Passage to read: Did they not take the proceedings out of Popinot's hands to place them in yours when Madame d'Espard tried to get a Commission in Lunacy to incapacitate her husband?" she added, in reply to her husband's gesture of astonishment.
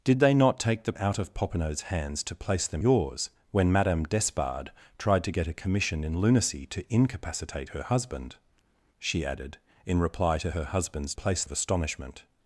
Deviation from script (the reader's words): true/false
true